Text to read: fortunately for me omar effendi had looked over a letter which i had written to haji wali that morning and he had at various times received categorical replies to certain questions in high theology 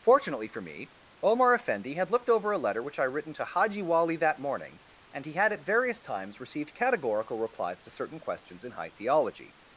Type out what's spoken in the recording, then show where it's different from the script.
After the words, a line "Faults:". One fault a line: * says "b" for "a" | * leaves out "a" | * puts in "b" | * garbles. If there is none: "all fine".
fortunately for me omar effendi had looked over a letter which i written to haji wali that morning and he had at various times received categorical replies to certain questions in high theology
Faults:
* leaves out "had"